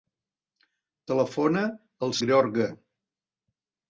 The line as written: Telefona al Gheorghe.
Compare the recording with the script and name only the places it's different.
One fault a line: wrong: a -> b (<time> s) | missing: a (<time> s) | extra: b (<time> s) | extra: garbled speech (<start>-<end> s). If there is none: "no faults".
no faults